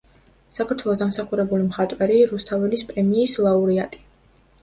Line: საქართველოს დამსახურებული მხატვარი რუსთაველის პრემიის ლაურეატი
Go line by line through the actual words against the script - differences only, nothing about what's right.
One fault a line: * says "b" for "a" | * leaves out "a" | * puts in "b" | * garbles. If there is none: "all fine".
all fine